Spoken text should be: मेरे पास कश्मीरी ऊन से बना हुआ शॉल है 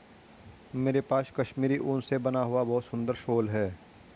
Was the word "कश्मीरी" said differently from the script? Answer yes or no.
no